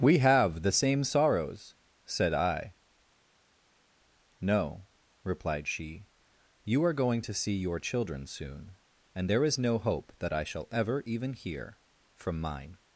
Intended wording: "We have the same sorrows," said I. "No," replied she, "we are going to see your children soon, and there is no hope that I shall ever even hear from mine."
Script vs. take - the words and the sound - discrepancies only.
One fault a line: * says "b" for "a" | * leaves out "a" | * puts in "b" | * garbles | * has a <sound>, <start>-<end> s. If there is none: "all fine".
* says "you" for "we"